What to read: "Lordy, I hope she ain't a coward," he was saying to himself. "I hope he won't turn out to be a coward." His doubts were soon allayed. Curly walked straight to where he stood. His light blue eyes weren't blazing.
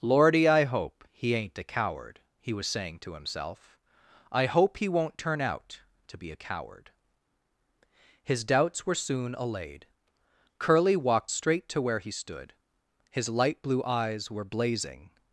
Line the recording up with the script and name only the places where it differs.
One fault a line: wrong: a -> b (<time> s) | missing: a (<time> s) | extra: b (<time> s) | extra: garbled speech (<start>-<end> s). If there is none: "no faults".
wrong: she -> he (1.1 s)
wrong: weren't -> were (14.3 s)